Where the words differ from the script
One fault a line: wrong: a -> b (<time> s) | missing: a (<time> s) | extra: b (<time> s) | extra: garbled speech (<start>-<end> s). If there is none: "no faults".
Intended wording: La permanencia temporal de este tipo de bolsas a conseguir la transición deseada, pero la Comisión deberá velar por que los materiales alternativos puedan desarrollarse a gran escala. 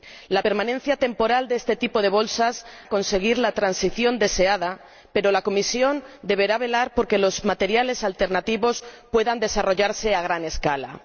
no faults